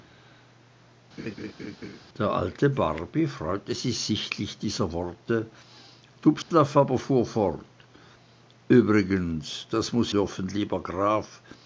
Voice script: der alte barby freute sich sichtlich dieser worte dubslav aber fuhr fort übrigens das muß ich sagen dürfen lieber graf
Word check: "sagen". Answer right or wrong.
wrong